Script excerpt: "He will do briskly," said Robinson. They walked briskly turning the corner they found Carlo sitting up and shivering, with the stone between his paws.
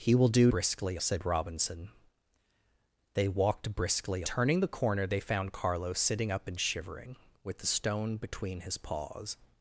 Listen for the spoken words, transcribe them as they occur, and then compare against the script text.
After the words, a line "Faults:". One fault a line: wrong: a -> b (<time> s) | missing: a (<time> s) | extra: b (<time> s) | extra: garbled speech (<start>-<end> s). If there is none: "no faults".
"He will do briskly," said Robinson. They walked briskly turning the corner they found Carlo sitting up and shivering, with the stone between his paws.
Faults:
no faults